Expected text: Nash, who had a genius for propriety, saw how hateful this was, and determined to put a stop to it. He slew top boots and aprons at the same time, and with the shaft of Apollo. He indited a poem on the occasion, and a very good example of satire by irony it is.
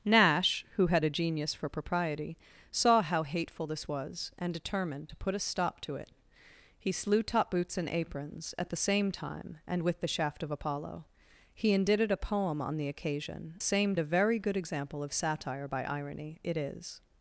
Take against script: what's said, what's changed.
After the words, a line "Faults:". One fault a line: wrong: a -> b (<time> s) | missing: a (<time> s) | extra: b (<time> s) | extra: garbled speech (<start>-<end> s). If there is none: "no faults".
Nash, who had a genius for propriety, saw how hateful this was, and determined to put a stop to it. He slew top boots and aprons at the same time, and with the shaft of Apollo. He indited a poem on the occasion, same a very good example of satire by irony it is.
Faults:
wrong: and -> same (13.6 s)